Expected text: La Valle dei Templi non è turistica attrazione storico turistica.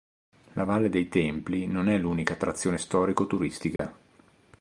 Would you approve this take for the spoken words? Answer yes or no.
no